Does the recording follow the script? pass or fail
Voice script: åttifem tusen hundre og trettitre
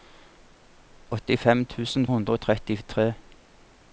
pass